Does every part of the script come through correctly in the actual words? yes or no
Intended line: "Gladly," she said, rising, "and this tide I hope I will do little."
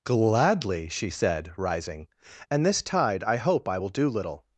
yes